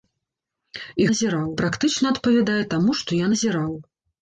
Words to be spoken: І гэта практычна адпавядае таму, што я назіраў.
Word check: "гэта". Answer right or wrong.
wrong